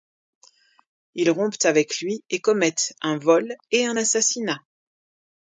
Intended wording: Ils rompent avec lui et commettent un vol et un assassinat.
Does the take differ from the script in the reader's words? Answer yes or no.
no